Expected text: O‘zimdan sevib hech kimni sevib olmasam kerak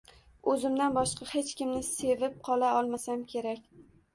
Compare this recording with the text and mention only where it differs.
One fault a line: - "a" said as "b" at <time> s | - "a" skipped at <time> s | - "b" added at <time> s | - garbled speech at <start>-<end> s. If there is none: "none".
- "sevib" said as "boshqa" at 0.9 s
- "qola" added at 2.5 s